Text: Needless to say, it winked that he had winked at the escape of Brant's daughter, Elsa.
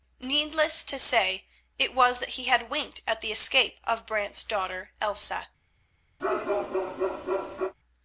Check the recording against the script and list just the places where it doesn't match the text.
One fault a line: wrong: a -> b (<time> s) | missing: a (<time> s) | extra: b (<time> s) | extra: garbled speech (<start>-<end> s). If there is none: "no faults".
wrong: winked -> was (1.9 s)